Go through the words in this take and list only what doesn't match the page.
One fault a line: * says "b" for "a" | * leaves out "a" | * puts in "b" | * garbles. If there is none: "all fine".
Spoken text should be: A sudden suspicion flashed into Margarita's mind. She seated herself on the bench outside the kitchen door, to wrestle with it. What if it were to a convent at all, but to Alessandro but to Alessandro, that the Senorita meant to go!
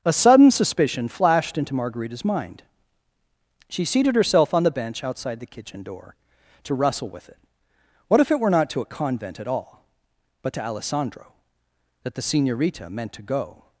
* puts in "not"
* leaves out "but to Alessandro"